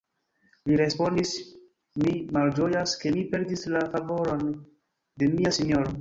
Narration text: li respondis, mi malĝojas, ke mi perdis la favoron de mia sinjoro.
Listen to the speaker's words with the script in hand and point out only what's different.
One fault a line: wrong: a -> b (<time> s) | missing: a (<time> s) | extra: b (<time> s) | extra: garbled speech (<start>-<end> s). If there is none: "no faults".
no faults